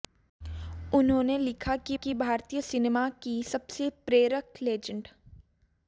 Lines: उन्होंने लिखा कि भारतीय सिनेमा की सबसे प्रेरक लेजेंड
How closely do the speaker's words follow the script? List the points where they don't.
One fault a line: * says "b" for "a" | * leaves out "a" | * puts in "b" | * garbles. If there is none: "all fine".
* puts in "कि"